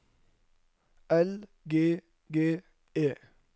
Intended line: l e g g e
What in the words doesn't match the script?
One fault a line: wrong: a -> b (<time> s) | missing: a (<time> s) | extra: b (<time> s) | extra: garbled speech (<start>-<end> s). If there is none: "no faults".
missing: e (1.5 s)